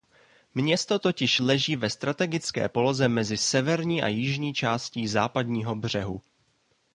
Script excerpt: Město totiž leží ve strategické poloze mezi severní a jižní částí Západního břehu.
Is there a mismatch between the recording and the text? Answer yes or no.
no